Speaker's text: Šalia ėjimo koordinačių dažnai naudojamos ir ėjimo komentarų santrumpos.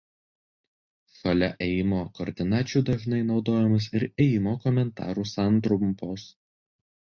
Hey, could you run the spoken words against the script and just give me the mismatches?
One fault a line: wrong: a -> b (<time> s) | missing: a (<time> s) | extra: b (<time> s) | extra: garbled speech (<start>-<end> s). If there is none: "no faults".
no faults